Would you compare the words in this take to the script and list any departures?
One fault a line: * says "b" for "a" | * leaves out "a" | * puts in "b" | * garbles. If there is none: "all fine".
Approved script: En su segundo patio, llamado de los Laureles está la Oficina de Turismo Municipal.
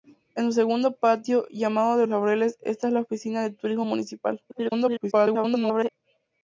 * leaves out "los"
* garbles